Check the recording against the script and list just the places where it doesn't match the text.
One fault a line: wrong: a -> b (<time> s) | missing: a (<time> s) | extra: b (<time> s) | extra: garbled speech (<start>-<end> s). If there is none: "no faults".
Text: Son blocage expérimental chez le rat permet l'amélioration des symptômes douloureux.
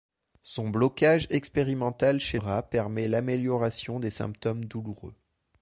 missing: le (2.4 s)